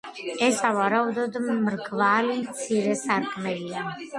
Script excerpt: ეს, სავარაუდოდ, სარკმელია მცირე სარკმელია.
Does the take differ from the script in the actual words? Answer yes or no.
yes